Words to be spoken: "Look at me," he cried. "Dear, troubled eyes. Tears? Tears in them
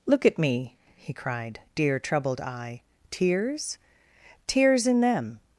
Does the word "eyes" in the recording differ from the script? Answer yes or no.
yes